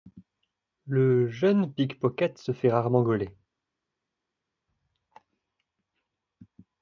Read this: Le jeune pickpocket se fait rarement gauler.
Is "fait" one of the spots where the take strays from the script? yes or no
no